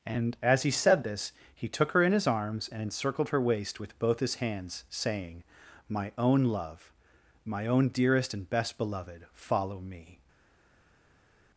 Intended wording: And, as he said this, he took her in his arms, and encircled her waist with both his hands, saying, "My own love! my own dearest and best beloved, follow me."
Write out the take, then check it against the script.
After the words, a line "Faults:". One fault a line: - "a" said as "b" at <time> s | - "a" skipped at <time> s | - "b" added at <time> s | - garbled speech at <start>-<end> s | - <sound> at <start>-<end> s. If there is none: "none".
And, as he said this, he took her in his arms, and encircled her waist with both his hands, saying, "My own love! my own dearest and best beloved, follow me."
Faults:
none